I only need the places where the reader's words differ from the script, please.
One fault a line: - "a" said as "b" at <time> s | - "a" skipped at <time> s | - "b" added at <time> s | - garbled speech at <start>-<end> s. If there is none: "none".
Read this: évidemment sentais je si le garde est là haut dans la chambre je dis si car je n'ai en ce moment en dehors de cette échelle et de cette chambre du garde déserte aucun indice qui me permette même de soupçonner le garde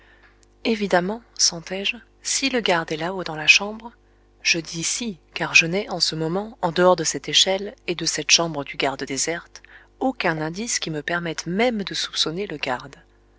none